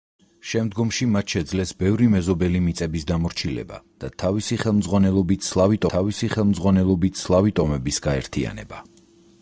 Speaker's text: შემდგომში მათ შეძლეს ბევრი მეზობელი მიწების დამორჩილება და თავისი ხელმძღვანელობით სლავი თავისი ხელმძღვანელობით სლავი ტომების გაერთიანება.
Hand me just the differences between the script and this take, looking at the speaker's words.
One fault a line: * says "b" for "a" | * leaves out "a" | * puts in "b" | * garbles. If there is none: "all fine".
all fine